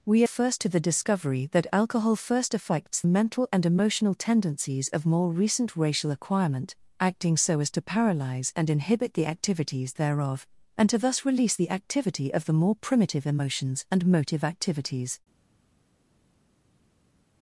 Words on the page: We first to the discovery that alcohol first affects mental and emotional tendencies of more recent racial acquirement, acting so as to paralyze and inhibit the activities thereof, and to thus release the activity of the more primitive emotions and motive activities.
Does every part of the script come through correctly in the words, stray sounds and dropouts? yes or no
yes